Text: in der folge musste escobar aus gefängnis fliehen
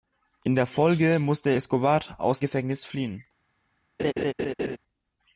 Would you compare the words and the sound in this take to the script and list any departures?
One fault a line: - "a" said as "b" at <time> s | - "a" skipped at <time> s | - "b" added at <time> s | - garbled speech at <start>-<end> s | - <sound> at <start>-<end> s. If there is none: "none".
- laugh at 4.0-4.8 s